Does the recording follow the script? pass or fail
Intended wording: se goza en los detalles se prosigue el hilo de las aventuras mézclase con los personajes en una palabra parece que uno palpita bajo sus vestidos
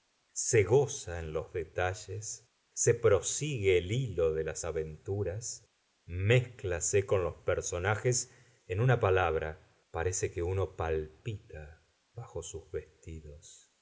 pass